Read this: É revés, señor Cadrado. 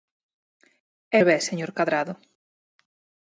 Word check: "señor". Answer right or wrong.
right